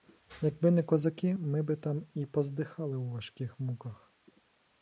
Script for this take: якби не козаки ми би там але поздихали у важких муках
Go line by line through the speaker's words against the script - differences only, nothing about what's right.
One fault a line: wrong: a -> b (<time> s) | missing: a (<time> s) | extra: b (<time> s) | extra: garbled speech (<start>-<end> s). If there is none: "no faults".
wrong: але -> і (2.1 s)